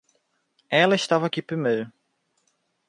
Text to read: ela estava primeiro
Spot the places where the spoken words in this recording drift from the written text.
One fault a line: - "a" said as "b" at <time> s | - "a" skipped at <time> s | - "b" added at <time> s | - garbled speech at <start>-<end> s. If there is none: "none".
- "aqui" added at 1.2 s